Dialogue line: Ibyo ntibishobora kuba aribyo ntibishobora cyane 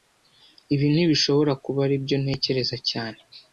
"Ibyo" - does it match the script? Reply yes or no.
no